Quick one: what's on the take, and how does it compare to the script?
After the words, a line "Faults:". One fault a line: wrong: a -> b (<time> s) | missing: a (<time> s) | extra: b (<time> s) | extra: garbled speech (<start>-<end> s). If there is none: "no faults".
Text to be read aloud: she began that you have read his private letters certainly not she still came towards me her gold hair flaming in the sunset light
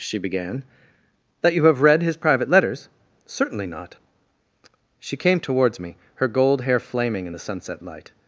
she began that you have read his private letters certainly not she came towards me her gold hair flaming in the sunset light
Faults:
missing: still (5.2 s)